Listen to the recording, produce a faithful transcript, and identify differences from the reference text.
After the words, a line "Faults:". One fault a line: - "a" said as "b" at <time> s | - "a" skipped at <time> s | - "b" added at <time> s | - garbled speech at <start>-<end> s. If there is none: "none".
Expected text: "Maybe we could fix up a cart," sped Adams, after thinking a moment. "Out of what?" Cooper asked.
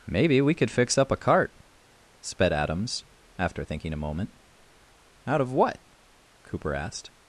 "Maybe we could fix up a cart," sped Adams, after thinking a moment. "Out of what?" Cooper asked.
Faults:
none